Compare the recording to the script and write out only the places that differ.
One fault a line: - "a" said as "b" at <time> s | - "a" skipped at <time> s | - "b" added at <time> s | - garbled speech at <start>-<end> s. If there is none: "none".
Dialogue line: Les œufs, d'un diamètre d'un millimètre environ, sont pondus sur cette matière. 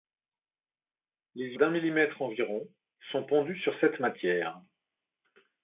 - "œufs d'un diamètre" skipped at 1.6 s